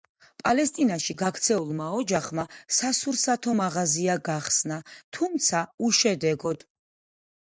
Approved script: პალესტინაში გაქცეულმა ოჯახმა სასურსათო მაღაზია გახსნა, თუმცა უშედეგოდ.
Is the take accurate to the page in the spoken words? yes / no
yes